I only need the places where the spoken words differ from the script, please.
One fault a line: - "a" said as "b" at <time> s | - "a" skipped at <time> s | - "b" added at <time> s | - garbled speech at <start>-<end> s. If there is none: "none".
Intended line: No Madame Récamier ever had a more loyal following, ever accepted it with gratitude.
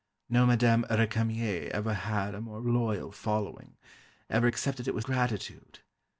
none